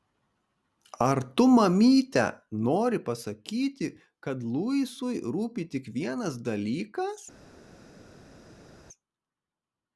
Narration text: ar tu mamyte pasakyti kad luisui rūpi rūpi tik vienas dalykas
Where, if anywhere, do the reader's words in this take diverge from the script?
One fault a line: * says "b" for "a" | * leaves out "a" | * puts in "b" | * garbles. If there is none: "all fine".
* puts in "nori"
* leaves out "rūpi"